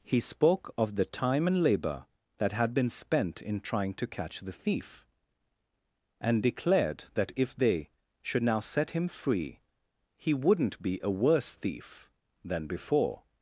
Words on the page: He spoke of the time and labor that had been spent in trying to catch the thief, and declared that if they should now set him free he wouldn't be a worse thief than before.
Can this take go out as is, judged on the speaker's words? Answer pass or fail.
pass